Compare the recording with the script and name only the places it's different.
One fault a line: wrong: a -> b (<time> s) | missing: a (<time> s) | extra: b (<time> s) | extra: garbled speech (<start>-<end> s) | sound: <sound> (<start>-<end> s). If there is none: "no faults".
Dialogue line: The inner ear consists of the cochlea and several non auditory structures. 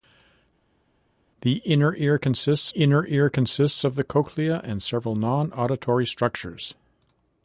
extra: inner ear consists (2.7 s)